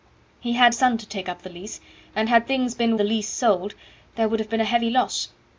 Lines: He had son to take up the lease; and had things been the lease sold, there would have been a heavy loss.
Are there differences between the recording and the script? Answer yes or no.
no